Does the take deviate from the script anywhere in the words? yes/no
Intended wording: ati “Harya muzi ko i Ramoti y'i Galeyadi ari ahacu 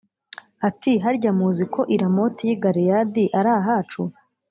no